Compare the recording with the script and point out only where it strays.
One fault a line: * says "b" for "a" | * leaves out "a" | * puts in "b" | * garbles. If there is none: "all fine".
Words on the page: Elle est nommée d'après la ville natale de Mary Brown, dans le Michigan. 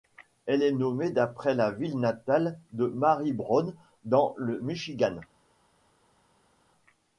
all fine